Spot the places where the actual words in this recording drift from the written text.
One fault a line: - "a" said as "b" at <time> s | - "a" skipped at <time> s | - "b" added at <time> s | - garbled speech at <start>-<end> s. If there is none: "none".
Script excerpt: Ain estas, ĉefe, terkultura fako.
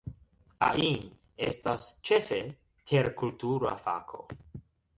none